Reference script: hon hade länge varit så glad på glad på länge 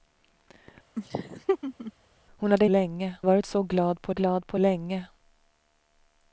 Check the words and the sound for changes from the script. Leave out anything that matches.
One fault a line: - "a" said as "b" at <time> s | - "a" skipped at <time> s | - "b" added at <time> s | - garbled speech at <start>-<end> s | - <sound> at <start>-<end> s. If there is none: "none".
- laugh at 1.0-1.9 s